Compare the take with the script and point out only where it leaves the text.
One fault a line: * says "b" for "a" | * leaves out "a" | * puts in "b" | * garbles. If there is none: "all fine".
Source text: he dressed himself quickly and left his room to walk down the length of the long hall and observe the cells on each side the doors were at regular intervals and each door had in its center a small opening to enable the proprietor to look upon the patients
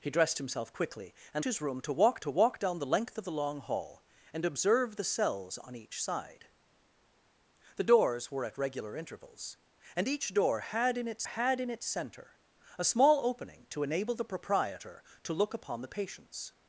* leaves out "left"
* puts in "to walk"
* puts in "had in its"